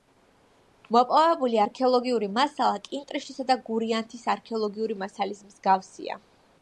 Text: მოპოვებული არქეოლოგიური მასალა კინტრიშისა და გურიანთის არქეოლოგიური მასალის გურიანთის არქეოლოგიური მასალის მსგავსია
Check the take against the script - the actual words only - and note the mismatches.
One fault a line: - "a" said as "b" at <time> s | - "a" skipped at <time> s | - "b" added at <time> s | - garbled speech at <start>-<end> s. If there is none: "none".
- "გურიანთის არქეოლოგიური მასალის" skipped at 5.4 s